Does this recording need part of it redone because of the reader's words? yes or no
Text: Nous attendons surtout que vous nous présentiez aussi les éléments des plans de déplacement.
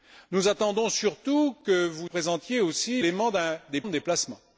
yes